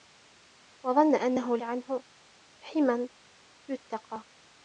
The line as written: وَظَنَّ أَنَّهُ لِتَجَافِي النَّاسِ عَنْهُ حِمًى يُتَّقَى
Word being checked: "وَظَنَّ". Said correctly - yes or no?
yes